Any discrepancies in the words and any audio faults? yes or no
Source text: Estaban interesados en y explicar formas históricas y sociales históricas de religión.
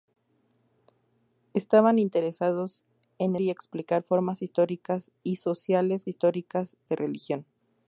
no